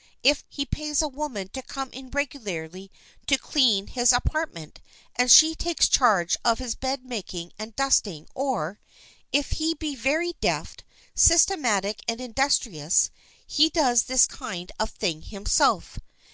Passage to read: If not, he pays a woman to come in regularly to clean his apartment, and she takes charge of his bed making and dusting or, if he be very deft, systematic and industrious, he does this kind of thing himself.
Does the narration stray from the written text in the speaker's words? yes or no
yes